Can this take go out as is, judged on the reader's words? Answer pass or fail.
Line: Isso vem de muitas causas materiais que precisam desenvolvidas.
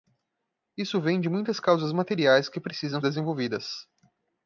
pass